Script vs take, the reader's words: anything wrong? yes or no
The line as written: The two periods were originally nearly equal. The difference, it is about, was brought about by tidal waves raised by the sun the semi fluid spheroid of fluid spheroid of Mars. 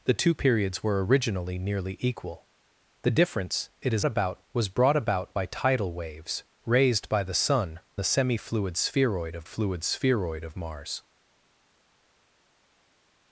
no